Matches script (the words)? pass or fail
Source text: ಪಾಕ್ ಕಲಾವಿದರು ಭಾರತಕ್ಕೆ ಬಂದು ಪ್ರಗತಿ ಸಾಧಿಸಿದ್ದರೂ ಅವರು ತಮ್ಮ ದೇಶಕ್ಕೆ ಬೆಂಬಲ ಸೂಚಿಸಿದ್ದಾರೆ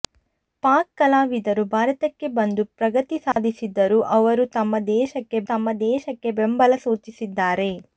fail